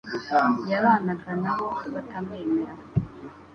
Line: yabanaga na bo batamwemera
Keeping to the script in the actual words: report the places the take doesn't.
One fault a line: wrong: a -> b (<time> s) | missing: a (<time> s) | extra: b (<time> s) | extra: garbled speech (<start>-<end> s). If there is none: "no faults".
no faults